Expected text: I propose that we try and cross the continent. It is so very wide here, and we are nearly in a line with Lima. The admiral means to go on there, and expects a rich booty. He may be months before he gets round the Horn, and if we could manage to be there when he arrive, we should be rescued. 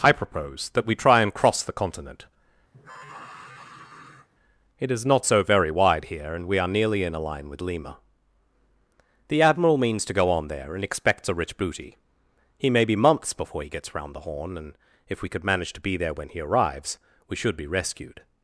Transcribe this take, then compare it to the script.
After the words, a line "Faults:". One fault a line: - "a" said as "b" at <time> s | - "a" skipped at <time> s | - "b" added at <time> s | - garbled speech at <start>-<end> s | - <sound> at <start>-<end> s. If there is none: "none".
I propose that we try and cross the continent. It is not so very wide here, and we are nearly in a line with Lima. The admiral means to go on there, and expects a rich booty. He may be months before he gets round the Horn, and if we could manage to be there when he arrives, we should be rescued.
Faults:
- sigh at 2.7-4.3 s
- "not" added at 5.1 s
- "arrive" said as "arrives" at 16.4 s